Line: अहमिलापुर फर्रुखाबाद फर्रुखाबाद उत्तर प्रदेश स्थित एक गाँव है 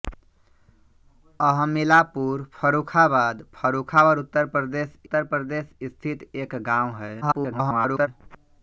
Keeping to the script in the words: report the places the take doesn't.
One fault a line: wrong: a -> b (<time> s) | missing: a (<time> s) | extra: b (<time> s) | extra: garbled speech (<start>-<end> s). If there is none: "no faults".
extra: उत्तर प्रदेश (5.0 s)
extra: garbled speech (7.2-8.1 s)